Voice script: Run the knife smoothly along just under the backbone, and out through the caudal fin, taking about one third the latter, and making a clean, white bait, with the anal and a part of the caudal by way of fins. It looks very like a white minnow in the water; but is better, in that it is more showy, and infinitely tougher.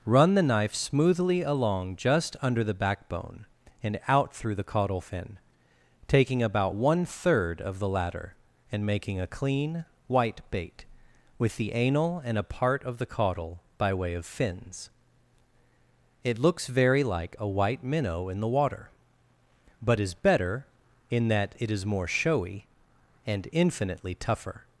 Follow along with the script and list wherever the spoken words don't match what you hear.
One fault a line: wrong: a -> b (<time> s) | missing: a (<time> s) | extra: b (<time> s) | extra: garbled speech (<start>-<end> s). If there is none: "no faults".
extra: of (7.6 s)